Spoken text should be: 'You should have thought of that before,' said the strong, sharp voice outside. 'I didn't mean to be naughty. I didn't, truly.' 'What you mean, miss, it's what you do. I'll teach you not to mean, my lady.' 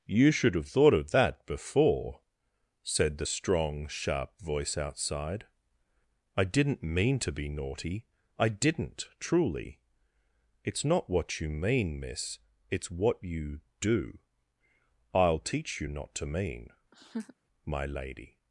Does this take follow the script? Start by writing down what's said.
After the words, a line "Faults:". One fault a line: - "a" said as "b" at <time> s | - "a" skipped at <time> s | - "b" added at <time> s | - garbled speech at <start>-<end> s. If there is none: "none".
'You should have thought of that before,' said the strong, sharp voice outside. 'I didn't mean to be naughty. I didn't, truly.' 'It's not what you mean, miss, it's what you do. I'll teach you not to mean, my lady.'
Faults:
- "It's not" added at 10.6 s